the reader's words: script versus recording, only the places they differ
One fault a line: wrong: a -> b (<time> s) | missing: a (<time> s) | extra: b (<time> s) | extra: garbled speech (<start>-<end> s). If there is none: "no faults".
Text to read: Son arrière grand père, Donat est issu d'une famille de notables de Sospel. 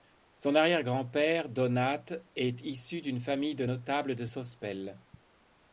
no faults